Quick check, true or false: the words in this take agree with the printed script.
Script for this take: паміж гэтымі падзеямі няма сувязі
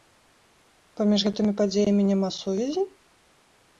true